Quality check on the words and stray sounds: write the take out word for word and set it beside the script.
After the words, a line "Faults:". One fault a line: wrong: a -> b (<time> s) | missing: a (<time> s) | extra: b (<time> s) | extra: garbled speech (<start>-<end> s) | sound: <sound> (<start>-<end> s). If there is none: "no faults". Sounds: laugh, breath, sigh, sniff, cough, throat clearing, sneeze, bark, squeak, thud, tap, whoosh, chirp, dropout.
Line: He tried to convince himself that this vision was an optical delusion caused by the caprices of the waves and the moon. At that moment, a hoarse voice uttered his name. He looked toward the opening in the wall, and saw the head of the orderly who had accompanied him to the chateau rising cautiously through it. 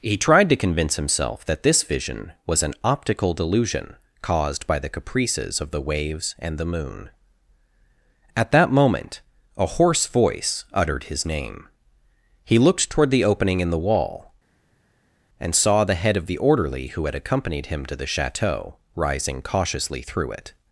He tried to convince himself that this vision was an optical delusion caused by the caprices of the waves and the moon. At that moment, a hoarse voice uttered his name. He looked toward the opening in the wall, and saw the head of the orderly who had accompanied him to the chateau rising cautiously through it.
Faults:
no faults